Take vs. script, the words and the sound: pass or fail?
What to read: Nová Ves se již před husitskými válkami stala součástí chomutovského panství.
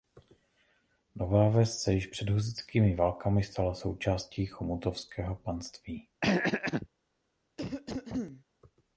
fail